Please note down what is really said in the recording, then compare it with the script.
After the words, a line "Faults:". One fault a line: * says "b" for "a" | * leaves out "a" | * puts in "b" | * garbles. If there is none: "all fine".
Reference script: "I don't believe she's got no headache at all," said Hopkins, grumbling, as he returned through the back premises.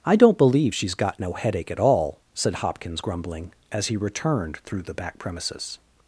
"I don't believe she's got no headache at all," said Hopkins, grumbling, as he returned through the back premises.
Faults:
all fine